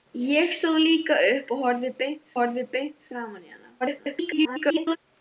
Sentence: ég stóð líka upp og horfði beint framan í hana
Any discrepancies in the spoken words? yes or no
yes